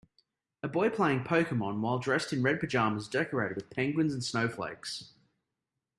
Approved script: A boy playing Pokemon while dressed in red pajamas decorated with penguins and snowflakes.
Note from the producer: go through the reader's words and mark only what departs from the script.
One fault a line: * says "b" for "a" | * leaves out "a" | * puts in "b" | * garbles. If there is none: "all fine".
all fine